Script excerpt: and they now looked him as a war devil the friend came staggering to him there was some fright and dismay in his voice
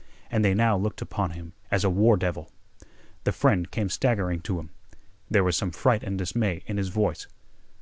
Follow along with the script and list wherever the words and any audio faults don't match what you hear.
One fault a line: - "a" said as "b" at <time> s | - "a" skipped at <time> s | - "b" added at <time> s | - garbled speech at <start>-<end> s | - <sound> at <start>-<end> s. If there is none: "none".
- "upon" added at 1.0 s